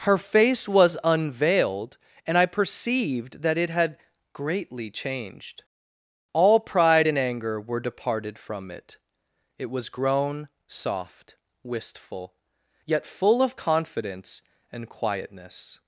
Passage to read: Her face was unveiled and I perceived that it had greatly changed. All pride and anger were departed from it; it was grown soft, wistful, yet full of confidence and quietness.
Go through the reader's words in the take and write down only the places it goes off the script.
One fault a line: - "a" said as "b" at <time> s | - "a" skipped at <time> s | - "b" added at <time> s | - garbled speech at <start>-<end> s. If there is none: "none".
none